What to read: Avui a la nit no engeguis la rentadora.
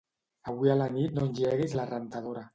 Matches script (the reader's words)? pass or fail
pass